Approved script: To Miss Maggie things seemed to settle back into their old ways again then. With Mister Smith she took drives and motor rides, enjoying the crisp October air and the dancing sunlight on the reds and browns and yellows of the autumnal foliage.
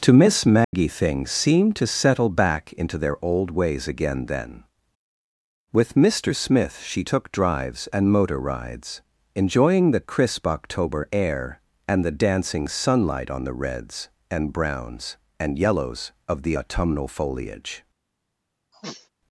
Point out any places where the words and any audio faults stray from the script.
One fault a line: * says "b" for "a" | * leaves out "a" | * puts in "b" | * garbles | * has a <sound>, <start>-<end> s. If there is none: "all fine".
* has a dropout, 0.6-0.7 s
* has a sniff, 18.7-19.1 s